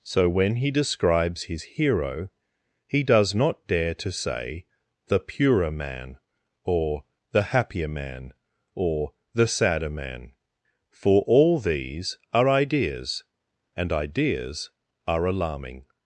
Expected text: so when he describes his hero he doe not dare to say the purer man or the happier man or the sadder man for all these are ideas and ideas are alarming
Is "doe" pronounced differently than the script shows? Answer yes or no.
yes